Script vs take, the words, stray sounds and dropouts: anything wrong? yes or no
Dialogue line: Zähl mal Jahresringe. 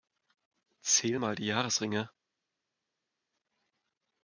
yes